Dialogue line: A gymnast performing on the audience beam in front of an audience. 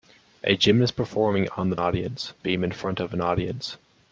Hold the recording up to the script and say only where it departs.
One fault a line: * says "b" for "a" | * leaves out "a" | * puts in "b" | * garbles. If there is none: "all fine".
all fine